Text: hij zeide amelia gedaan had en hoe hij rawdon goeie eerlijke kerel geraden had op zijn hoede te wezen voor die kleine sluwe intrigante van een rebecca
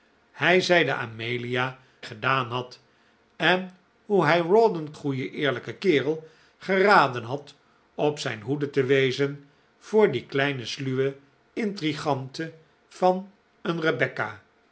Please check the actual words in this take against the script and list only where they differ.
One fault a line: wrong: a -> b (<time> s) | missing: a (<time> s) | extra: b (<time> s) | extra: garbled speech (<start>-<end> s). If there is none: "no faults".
no faults